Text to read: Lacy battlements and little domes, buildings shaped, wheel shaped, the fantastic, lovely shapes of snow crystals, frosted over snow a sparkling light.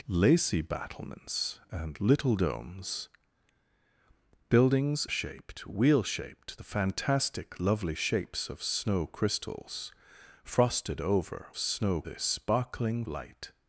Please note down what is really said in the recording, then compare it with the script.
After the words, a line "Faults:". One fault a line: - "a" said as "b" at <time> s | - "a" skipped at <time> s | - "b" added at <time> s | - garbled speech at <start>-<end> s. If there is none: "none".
Lacy battlements and little domes, buildings shaped, wheel shaped, the fantastic, lovely shapes of snow crystals, frosted over snow a sparkling light.
Faults:
none